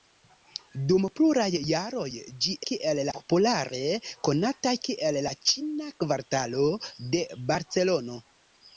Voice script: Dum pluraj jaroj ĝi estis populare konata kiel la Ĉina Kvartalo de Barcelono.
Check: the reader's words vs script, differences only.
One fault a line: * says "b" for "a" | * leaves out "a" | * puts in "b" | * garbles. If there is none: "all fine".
* says "kiel" for "estis"